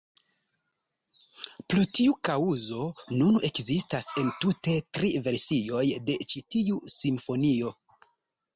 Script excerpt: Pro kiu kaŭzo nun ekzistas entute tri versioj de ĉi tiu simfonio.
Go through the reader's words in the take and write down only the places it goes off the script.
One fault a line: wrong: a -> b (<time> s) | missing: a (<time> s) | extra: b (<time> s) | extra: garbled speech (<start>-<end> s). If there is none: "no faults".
wrong: kiu -> tiu (2.0 s)